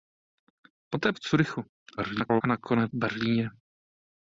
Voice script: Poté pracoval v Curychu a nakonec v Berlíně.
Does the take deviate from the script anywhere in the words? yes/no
yes